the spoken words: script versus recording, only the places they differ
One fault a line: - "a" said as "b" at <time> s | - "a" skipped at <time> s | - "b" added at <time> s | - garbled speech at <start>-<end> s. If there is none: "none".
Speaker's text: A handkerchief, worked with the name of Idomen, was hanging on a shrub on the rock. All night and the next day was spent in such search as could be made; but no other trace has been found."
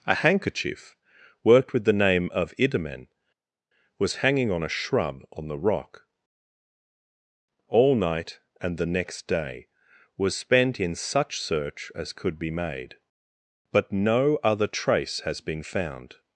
none